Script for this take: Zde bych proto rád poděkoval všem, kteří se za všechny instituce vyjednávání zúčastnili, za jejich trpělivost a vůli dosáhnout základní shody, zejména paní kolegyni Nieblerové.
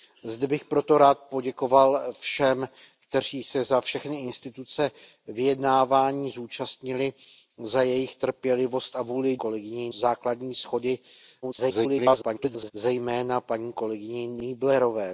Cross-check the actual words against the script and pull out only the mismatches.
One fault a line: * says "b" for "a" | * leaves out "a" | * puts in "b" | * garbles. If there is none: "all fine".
* says "kolegyni" for "dosáhnout"
* garbles